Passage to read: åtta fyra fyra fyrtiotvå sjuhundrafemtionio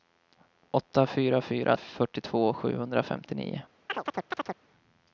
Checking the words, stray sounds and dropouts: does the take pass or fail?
fail